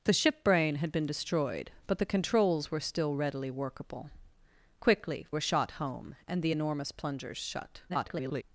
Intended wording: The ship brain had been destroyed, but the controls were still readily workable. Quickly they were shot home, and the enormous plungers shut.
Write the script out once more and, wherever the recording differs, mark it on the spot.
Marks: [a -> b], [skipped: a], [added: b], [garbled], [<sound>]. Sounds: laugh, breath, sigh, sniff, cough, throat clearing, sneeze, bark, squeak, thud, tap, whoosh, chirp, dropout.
The ship brain had been destroyed, but the controls were still readily workable. Quickly [skipped: they] were shot home, and the enormous plungers shut. [garbled]